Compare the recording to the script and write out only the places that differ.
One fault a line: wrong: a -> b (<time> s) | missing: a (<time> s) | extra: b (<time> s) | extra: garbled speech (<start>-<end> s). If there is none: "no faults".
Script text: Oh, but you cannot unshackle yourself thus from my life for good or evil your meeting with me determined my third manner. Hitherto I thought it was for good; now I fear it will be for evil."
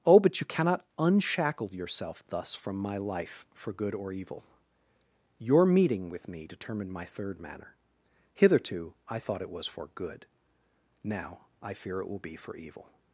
no faults